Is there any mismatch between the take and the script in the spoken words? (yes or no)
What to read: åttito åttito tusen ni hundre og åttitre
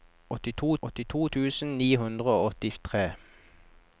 no